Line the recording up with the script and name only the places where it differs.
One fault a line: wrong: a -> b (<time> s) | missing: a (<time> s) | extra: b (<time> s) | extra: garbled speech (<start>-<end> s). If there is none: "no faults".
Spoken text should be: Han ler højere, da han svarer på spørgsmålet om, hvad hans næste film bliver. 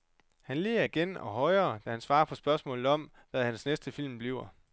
extra: igen og (0.8 s)